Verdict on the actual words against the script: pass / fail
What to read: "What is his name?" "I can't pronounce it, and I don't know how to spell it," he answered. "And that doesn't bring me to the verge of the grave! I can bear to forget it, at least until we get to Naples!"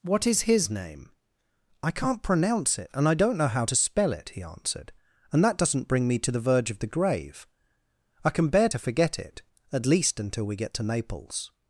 pass